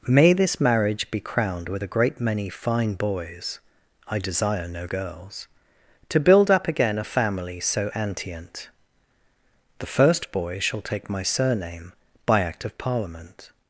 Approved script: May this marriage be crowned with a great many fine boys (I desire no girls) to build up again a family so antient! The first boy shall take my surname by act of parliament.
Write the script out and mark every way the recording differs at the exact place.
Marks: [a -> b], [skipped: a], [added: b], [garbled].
May this marriage be crowned with a great many fine boys (I desire no girls) to build up again a family so antient! The first boy shall take my surname by act of parliament.